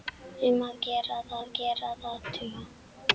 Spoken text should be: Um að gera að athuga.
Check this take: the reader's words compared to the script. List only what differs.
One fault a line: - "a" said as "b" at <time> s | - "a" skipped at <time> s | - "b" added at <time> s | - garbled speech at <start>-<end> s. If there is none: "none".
- "að gera að" added at 1.4 s